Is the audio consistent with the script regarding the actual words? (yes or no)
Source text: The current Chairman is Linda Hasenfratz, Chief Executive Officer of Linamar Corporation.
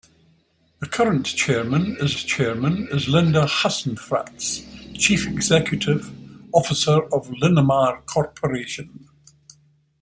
no